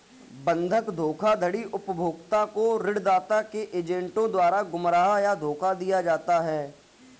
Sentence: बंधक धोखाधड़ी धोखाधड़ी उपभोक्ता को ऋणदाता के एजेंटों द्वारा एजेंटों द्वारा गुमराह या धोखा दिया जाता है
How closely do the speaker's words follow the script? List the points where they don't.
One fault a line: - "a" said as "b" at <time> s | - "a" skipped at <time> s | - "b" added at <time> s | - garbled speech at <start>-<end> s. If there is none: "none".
- "धोखाधड़ी" skipped at 1.6 s
- "एजेंटों द्वारा" skipped at 4.6 s